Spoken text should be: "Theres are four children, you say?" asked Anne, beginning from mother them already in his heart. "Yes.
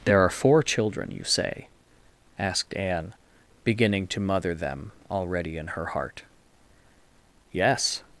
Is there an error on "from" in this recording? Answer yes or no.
yes